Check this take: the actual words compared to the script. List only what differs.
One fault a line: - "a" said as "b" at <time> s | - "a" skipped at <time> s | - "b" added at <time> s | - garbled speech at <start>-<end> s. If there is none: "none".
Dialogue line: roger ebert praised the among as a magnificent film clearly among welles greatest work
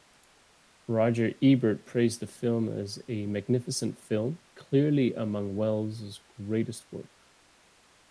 - "among" said as "film" at 2.3 s